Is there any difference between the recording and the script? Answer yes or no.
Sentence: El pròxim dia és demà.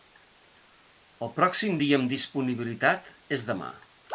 yes